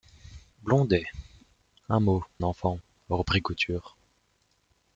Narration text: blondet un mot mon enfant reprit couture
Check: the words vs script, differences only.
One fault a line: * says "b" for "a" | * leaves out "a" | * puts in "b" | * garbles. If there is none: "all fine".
* leaves out "mon"